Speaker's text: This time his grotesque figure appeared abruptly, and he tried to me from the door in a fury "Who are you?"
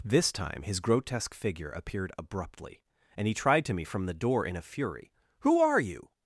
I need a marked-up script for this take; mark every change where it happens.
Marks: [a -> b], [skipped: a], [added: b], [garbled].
This time his grotesque figure appeared abruptly, and he tried to me from the door in a fury "Who are you?"